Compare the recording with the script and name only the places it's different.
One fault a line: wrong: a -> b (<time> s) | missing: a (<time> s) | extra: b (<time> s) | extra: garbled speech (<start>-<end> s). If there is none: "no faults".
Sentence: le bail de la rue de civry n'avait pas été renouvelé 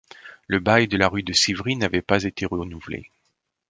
no faults